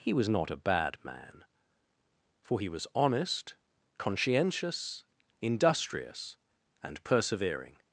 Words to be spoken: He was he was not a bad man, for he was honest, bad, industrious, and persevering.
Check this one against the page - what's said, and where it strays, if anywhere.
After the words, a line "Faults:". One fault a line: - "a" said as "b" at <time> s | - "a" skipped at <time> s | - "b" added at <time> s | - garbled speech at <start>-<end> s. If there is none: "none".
He was not a bad man, for he was honest, conscientious, industrious, and persevering.
Faults:
- "he was" skipped at 0.3 s
- "bad" said as "conscientious" at 4.0 s